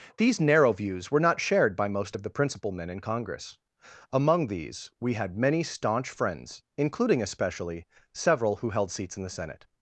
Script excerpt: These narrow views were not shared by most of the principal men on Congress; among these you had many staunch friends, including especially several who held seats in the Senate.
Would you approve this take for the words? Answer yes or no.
no